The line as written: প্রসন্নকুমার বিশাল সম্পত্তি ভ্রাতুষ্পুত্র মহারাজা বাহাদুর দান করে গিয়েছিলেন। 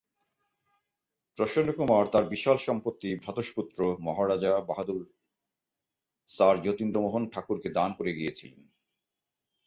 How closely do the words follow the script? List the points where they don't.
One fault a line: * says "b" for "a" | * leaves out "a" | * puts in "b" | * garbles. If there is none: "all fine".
* puts in "তার"
* puts in "স্যার যতীন্দ্রমোহন ঠাকুরকে"